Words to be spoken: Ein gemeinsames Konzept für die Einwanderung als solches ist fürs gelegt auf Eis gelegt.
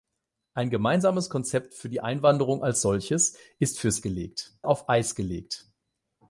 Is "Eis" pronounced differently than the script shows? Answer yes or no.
no